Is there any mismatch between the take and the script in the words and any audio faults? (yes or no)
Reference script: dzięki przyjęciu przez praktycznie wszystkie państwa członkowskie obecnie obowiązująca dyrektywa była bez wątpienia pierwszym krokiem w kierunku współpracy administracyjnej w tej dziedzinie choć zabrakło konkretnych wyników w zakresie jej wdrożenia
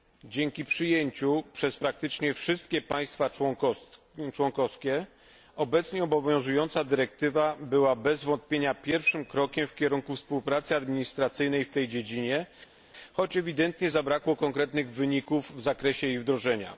yes